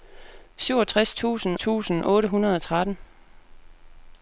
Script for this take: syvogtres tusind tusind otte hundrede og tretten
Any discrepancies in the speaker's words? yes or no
no